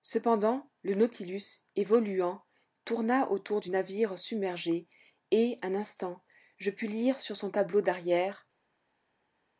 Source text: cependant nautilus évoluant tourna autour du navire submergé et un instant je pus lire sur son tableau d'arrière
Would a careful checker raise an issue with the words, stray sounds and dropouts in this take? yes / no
yes